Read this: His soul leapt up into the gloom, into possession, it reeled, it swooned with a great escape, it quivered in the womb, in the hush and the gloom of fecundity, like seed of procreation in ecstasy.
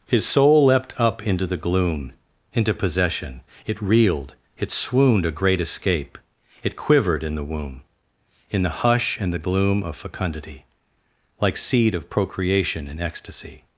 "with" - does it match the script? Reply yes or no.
no